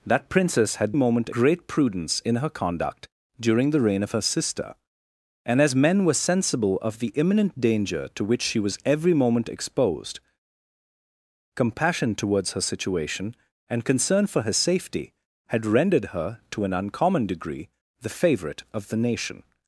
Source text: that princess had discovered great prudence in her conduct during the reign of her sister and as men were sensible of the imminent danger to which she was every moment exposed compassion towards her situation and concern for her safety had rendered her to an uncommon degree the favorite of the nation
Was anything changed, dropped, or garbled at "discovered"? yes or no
yes